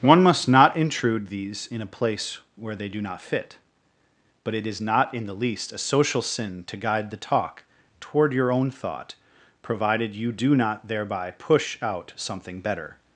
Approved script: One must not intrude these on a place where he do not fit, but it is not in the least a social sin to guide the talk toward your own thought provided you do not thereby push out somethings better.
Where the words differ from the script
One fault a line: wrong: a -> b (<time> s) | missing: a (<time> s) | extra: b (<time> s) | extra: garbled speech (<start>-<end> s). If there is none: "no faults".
wrong: on -> in (1.7 s)
wrong: he -> they (2.8 s)
wrong: somethings -> something (12.2 s)